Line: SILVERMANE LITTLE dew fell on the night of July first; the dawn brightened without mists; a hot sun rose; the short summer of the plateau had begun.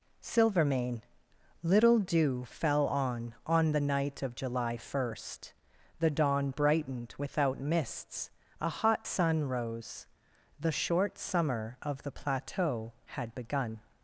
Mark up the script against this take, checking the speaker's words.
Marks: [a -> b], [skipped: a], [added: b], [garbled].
SILVERMANE LITTLE dew fell on [added: on] the night of July first; the dawn brightened without mists; a hot sun rose; the short summer of the plateau had begun.